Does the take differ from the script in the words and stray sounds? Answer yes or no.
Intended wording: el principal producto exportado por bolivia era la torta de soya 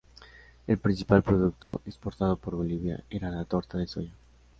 yes